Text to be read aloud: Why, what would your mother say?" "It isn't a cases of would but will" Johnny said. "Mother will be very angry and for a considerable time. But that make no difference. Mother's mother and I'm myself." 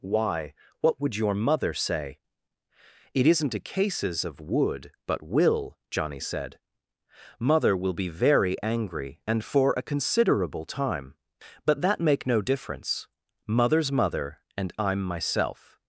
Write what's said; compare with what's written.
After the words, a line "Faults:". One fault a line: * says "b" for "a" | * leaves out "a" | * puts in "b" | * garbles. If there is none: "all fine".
Why, what would your mother say?" "It isn't a cases of would but will" Johnny said. "Mother will be very angry and for a considerable time. But that make no difference. Mother's mother and I'm myself."
Faults:
all fine